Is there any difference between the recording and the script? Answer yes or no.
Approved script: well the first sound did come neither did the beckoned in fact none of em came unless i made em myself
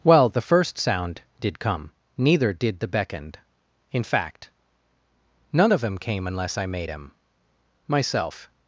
no